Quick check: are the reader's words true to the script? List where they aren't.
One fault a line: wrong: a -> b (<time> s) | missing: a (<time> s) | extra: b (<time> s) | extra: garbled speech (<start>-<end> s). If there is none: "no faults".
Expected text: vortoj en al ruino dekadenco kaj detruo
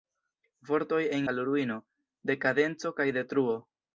no faults